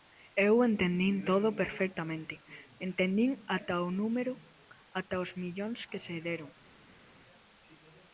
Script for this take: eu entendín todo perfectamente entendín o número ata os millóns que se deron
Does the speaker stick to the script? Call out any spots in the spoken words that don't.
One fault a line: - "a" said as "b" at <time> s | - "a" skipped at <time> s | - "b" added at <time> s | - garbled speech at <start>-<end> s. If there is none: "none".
- "ata" added at 3.6 s